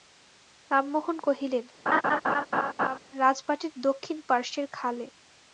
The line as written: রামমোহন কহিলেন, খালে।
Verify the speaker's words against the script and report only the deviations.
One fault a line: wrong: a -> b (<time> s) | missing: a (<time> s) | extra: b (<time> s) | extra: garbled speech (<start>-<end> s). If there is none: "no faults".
extra: রাজবাটীর দক্ষিণ পার্শ্বের (3.2 s)